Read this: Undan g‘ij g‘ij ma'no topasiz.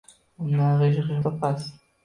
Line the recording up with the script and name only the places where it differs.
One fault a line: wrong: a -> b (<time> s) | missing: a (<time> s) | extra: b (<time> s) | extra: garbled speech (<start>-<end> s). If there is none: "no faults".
missing: ma'no (1.2 s)